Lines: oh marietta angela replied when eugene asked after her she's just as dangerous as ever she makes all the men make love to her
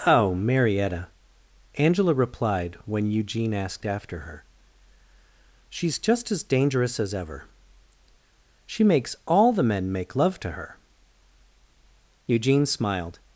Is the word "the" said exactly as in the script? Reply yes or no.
yes